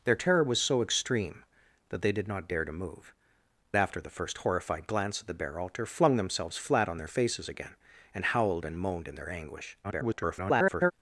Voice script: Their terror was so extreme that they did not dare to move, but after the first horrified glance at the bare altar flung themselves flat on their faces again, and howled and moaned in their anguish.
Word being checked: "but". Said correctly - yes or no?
no